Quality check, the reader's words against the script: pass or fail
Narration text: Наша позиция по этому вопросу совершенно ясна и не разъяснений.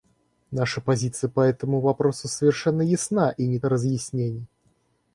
pass